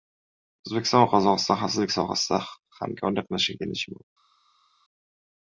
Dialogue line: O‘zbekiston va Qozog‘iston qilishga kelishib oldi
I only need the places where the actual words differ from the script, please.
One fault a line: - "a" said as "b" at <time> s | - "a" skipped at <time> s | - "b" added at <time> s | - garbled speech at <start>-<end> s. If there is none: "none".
- "xavfsizlik sohasida hamkorlik" added at 1.6 s